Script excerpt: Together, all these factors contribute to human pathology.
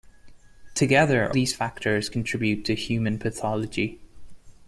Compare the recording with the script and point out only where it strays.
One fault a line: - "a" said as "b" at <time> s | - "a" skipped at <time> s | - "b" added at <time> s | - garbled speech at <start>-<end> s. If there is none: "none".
- "all" skipped at 1.3 s